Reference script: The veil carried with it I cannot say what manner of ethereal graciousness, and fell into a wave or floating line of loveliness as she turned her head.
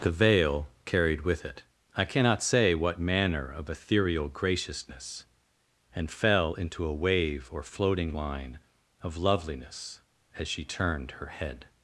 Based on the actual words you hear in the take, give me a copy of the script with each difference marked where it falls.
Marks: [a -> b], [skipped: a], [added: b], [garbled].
The veil carried with it I cannot say what manner of ethereal graciousness, and fell into a wave or floating line of loveliness as she turned her head.